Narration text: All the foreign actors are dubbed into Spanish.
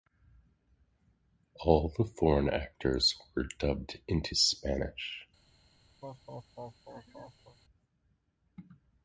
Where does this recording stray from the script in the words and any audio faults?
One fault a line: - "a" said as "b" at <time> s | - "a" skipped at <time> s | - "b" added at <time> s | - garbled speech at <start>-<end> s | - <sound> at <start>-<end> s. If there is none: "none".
- "are" said as "were" at 3.4 s
- laugh at 6.0-7.6 s